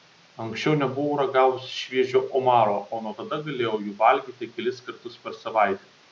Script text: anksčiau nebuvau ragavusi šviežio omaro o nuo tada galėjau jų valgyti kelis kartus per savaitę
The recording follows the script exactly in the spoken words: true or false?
true